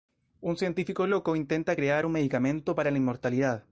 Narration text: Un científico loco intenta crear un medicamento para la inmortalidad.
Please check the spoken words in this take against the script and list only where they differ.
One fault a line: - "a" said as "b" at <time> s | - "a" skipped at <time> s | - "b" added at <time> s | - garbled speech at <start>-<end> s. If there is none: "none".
none